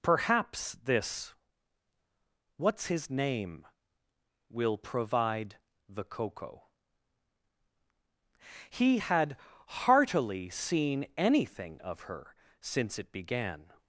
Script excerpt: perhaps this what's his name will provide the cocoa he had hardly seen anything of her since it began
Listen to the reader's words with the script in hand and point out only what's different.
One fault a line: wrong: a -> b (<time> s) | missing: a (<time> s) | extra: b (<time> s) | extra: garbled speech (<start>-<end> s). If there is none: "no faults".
wrong: hardly -> heartily (9.7 s)